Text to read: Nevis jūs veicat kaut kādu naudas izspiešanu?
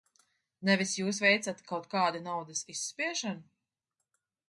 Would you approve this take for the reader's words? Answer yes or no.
yes